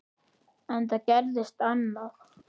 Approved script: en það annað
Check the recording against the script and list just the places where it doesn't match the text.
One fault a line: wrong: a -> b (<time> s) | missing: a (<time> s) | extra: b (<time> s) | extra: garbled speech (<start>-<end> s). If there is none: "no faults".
extra: gerðist (1.1 s)